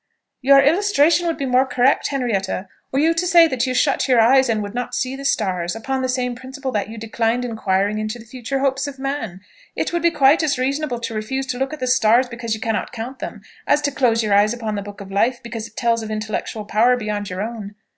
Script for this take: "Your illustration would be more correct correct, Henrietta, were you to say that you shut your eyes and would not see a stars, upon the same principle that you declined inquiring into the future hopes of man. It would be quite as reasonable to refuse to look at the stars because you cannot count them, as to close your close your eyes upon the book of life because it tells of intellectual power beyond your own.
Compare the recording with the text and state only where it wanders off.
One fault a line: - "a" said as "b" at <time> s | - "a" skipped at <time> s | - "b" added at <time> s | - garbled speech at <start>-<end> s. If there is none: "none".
- "correct" skipped at 2.1 s
- "a" said as "the" at 5.1 s
- "close your" skipped at 14.3 s